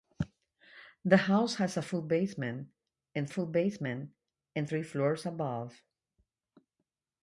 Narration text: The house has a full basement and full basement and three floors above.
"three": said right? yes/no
yes